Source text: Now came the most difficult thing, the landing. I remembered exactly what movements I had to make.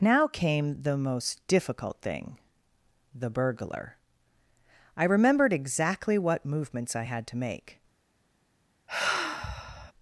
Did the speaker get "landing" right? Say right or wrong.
wrong